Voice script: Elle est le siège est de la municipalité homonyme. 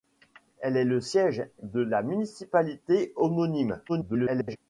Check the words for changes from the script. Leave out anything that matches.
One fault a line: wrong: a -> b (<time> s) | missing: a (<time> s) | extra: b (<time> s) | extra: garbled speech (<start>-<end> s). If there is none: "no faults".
missing: est (1.5 s)
extra: garbled speech (3.9-4.6 s)